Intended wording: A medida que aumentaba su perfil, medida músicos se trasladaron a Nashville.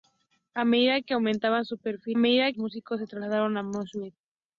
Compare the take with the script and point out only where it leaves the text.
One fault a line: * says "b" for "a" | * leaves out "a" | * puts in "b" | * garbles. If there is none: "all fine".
all fine